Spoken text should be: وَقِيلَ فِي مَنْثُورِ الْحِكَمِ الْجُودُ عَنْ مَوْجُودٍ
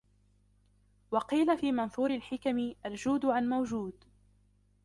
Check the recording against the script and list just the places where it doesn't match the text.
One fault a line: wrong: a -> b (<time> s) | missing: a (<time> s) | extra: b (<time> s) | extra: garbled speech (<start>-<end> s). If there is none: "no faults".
no faults